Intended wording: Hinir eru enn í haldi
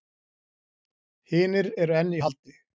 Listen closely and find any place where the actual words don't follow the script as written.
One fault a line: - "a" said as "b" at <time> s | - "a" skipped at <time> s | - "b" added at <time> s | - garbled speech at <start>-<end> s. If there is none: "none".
none